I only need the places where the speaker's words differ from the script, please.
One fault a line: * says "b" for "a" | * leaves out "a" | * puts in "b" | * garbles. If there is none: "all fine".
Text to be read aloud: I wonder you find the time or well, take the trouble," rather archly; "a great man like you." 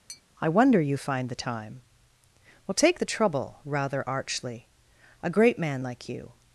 * leaves out "or"